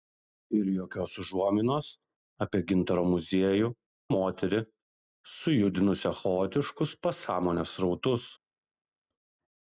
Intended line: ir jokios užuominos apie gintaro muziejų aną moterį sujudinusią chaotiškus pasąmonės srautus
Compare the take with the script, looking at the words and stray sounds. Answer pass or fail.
fail